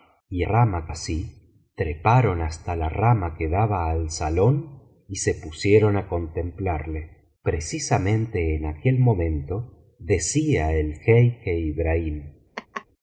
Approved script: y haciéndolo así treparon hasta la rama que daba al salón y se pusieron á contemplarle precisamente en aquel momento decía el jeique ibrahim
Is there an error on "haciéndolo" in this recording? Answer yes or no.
yes